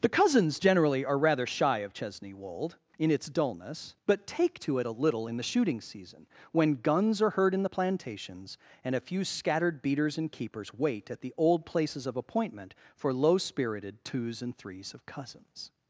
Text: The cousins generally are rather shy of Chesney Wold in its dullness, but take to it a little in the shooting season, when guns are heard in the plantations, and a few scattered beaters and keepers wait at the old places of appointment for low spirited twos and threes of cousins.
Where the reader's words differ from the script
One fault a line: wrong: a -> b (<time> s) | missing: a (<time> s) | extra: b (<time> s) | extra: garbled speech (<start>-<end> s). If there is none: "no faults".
no faults